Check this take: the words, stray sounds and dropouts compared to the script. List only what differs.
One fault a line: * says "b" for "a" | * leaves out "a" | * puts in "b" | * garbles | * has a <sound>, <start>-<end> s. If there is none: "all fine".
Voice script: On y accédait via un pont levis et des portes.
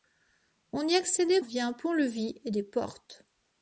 all fine